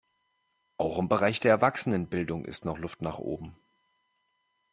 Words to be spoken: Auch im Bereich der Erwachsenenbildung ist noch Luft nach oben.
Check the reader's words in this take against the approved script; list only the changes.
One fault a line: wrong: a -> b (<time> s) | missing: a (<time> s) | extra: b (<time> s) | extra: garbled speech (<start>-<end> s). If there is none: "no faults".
no faults